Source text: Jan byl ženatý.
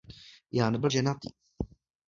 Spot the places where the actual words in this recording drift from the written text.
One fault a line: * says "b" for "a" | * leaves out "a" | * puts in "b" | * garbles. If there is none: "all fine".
all fine